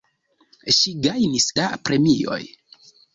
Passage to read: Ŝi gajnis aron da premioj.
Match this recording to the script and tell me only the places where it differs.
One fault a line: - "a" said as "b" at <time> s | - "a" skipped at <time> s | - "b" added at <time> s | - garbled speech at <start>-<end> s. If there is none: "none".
- "aron" skipped at 1.5 s